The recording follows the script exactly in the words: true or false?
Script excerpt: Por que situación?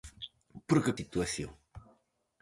true